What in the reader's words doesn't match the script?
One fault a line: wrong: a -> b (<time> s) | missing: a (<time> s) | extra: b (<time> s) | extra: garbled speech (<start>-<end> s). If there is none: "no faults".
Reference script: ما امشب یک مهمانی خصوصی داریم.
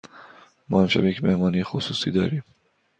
no faults